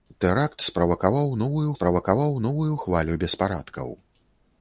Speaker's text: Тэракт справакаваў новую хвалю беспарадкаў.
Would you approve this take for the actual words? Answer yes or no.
no